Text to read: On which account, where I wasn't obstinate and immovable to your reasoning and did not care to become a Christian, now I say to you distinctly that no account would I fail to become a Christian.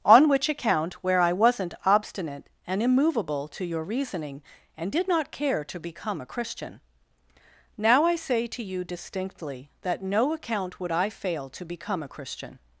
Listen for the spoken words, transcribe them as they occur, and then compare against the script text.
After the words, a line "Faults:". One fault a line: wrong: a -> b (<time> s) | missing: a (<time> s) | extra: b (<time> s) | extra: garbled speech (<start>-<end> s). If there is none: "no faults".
On which account, where I wasn't obstinate and immovable to your reasoning and did not care to become a Christian, now I say to you distinctly that no account would I fail to become a Christian.
Faults:
no faults